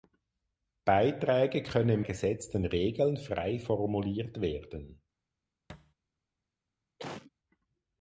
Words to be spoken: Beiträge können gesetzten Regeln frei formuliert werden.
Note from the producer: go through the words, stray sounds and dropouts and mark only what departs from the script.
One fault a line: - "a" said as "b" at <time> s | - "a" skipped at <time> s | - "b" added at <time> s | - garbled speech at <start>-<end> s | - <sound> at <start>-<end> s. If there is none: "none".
- thud at 5.7-5.9 s
- cough at 7.0-7.3 s